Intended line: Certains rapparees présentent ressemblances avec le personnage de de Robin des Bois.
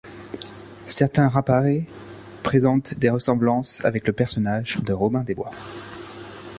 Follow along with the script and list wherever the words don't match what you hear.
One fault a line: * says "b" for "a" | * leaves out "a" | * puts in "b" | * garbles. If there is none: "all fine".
* puts in "des"
* leaves out "de"